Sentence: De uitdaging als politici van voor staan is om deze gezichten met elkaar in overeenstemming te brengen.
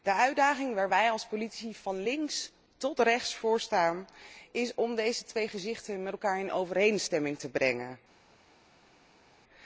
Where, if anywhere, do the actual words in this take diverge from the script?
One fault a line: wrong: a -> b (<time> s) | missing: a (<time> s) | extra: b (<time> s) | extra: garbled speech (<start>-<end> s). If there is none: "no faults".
extra: waar wij (0.8 s)
extra: links tot rechts (2.0 s)
extra: twee (5.2 s)